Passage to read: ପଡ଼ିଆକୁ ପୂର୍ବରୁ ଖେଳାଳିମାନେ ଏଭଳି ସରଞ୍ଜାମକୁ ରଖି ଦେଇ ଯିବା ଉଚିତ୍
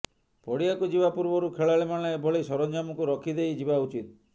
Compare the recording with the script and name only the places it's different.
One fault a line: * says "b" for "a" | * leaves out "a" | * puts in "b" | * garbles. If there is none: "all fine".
* puts in "ଯିବା"